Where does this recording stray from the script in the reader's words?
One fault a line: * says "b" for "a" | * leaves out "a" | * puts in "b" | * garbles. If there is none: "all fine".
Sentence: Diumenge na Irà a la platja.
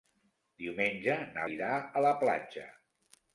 all fine